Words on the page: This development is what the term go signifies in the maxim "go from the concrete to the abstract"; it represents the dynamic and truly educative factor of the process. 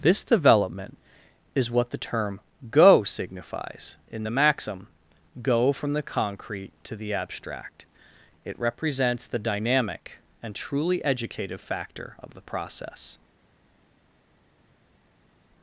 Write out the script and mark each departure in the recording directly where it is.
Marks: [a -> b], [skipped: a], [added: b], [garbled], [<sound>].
This development is what the term go signifies in the maxim "go from the concrete to the abstract"; it represents the dynamic and truly educative factor of the process.